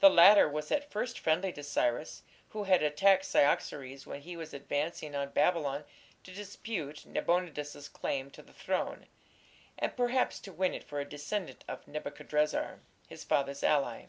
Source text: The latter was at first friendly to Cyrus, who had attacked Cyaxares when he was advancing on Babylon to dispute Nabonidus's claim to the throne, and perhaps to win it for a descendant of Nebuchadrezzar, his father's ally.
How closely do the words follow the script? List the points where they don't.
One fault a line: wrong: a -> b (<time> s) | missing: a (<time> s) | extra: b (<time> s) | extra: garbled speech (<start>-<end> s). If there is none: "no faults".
no faults